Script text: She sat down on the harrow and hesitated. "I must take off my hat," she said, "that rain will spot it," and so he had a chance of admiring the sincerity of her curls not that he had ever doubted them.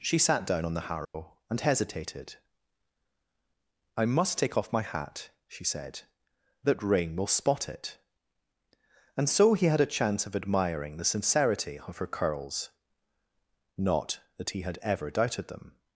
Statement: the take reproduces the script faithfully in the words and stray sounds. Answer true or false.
false